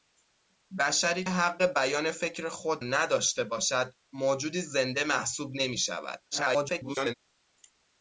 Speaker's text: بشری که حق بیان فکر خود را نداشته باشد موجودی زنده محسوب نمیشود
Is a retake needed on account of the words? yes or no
yes